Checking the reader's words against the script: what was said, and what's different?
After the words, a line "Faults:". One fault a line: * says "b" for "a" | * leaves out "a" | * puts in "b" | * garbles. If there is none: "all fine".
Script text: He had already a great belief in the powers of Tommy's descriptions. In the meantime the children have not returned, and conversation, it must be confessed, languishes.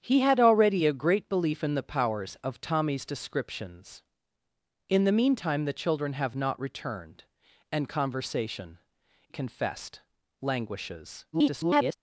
He had already a great belief in the powers of Tommy's descriptions. In the meantime the children have not returned, and conversation, confessed, languishes. [garbled]
Faults:
* leaves out "it must be"
* garbles